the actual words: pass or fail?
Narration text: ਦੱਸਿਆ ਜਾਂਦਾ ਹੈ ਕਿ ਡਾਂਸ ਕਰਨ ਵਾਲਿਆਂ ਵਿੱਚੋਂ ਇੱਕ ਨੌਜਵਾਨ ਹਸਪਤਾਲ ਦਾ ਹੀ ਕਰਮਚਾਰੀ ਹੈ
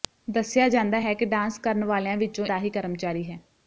fail